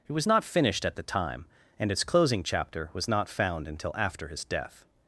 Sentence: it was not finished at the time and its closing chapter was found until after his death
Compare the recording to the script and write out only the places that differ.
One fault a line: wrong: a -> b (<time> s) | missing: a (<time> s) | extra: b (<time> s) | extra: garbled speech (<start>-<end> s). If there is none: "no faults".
extra: not (3.1 s)